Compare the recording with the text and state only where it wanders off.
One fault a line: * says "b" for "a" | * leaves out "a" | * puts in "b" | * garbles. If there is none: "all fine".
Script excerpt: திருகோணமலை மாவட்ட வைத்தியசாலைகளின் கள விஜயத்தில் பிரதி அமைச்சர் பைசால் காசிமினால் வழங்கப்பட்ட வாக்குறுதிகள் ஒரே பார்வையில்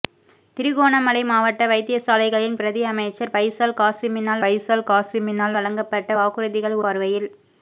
* leaves out "கள விஜயத்தில்"
* puts in "பைசால் காசிமினால்"
* leaves out "ஒரே"